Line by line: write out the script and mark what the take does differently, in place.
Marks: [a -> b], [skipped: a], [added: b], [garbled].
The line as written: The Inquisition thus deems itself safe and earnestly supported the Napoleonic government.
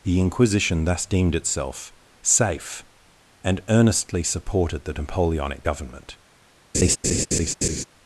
The Inquisition thus [deems -> deemed] itself safe and earnestly supported the Napoleonic government.